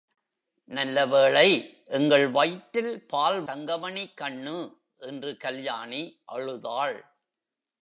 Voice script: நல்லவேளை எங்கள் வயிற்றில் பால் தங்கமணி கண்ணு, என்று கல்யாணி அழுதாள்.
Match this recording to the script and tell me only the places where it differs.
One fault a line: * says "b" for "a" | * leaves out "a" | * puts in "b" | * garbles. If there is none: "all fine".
all fine